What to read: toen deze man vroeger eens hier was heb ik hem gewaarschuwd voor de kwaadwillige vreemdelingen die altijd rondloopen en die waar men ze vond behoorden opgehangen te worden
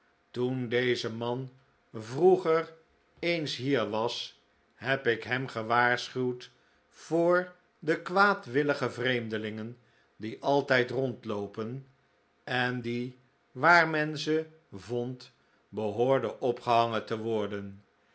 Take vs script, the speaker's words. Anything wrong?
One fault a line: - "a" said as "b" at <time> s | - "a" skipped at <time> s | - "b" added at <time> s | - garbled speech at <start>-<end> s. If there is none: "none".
none